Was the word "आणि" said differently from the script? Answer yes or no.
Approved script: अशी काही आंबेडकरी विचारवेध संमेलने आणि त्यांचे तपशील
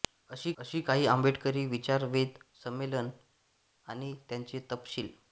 no